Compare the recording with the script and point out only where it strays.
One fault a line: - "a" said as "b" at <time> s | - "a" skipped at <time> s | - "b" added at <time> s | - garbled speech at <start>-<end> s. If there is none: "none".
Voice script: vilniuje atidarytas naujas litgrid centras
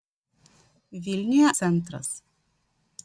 - "atidarytas naujas litgrid" skipped at 1.5 s